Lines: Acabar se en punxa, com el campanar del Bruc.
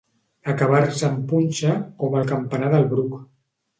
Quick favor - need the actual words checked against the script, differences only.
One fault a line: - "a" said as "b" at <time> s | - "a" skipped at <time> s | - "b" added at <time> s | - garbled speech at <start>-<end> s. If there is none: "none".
none